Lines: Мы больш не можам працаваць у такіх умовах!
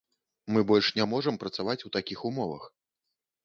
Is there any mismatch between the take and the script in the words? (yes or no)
no